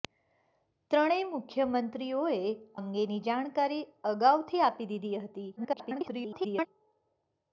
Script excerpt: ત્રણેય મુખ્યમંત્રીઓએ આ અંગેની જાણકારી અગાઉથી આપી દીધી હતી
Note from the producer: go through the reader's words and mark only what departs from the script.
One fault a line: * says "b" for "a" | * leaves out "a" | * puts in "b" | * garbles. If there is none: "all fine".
* leaves out "આ"
* garbles